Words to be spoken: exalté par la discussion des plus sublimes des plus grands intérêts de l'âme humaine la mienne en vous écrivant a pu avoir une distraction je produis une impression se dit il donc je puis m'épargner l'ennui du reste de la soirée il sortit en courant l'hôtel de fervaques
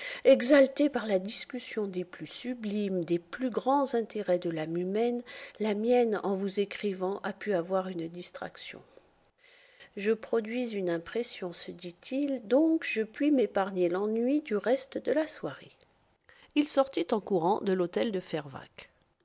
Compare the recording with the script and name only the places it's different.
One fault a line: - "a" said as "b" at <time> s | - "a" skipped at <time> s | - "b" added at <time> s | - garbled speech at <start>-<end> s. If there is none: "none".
- "de" added at 17.6 s